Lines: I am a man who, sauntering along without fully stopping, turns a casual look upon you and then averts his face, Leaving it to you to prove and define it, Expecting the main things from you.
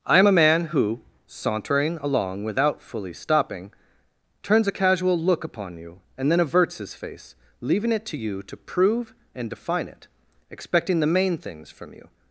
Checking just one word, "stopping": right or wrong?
right